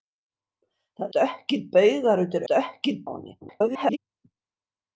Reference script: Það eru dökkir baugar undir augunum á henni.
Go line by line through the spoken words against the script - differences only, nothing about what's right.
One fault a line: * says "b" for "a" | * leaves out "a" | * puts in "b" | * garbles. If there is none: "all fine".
* leaves out "eru"
* says "dökkir" for "augunum"
* garbles